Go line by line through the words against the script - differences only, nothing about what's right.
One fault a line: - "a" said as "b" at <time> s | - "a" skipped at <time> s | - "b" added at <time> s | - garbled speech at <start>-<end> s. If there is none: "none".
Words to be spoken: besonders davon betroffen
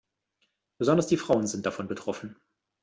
- "die frauen sind" added at 1.1 s